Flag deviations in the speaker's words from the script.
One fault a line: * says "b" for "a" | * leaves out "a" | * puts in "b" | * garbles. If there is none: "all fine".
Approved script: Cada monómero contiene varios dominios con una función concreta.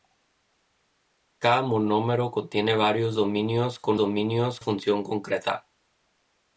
* says "dominios" for "una"